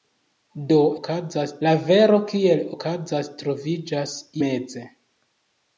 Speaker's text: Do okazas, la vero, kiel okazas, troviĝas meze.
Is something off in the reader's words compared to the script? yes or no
no